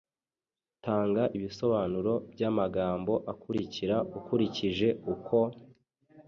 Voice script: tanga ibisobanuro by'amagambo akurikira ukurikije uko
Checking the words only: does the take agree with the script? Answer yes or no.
yes